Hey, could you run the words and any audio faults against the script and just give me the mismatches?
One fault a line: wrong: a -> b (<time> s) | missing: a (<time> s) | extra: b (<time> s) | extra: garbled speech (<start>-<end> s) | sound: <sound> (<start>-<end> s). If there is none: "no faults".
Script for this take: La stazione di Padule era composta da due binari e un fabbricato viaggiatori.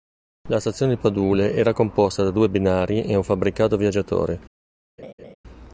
sound: laugh (5.0-5.3 s)